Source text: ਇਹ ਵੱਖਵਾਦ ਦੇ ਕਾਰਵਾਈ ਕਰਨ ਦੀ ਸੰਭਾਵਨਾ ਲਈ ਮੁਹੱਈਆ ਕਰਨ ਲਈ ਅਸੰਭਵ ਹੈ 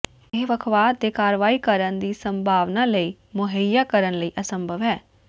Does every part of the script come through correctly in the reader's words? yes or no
yes